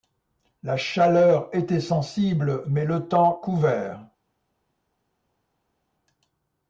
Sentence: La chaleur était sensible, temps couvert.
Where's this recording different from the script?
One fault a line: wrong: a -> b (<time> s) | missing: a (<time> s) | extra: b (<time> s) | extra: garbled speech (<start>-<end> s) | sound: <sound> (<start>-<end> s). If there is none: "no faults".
extra: mais le (2.7 s)